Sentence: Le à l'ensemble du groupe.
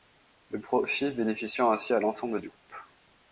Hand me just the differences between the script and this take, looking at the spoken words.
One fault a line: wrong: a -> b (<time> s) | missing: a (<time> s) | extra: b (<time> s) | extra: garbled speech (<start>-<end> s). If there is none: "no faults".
extra: profit bénéficiant ainsi (0.6 s)